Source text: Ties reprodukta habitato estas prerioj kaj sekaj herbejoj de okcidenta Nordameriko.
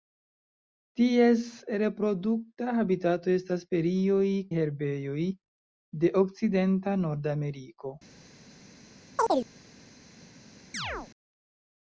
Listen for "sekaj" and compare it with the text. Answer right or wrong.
wrong